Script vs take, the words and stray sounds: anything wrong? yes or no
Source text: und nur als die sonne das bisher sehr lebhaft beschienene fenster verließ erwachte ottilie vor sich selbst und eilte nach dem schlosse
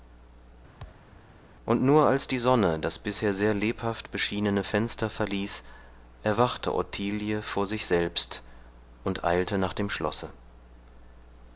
yes